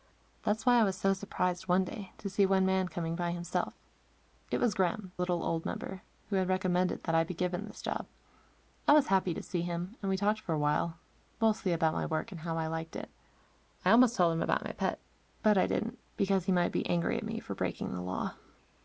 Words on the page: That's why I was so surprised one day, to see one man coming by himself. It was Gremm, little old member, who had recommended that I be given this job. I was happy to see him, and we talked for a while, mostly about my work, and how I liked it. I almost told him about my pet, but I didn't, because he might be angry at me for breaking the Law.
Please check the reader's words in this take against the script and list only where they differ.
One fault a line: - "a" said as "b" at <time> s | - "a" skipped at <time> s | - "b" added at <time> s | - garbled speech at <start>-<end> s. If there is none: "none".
none